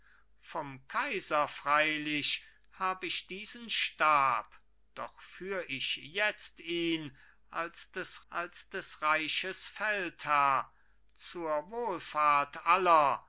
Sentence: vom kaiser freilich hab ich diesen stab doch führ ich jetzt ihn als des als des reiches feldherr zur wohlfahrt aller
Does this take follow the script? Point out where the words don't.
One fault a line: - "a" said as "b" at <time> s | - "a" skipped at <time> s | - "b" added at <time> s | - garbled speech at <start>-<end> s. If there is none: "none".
none